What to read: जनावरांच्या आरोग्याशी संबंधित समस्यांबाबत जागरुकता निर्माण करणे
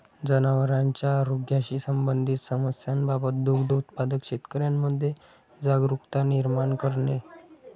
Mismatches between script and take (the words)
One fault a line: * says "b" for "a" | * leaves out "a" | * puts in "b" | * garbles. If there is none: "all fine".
* puts in "दुग्ध उत्पादक शेतकऱ्यांमध्ये"